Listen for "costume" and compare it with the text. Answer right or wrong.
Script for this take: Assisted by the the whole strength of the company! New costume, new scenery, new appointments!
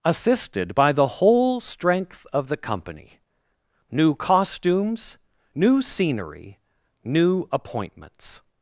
wrong